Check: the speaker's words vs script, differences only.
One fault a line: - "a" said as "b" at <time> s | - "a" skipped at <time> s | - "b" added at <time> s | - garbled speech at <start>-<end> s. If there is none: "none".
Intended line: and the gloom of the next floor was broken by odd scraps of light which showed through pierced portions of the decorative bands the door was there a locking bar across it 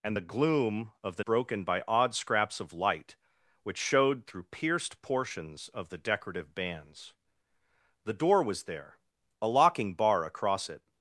- "next floor was" skipped at 1.2 s